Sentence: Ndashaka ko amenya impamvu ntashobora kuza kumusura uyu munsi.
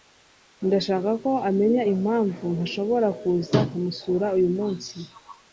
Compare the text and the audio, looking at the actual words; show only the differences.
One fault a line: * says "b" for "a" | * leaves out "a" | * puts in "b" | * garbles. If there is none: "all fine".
all fine